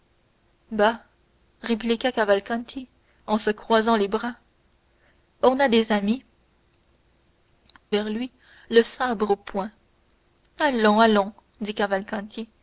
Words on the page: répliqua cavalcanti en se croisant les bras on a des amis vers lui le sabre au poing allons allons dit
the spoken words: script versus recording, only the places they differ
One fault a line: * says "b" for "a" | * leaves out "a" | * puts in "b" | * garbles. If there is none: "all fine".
all fine